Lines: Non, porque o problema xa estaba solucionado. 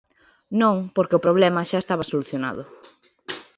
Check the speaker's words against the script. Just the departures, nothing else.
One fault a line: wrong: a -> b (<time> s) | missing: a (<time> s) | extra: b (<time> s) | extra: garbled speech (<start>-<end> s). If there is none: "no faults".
no faults